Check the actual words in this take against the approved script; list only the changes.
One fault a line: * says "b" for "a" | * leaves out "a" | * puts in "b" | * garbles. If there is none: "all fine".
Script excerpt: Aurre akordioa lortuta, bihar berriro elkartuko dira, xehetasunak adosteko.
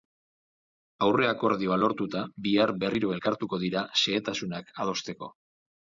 all fine